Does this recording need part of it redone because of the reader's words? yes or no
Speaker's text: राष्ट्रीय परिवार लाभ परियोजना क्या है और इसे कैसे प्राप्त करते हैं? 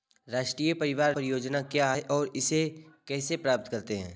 yes